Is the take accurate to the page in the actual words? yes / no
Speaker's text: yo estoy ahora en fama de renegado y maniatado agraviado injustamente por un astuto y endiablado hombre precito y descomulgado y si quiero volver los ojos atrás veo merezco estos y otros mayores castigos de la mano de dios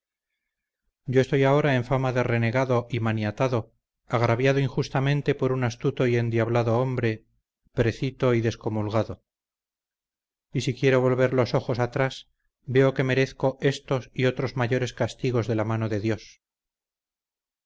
no